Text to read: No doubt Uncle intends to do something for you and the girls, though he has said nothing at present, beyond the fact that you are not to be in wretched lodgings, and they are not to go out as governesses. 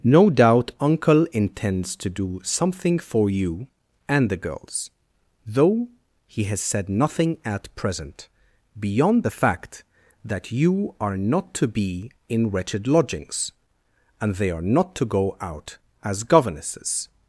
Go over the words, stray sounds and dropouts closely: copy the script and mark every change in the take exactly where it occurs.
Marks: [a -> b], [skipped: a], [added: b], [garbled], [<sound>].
No doubt Uncle intends to do something for you and the girls, though he has said nothing at present, beyond the fact that you are not to be in wretched lodgings, and they are not to go out as governesses.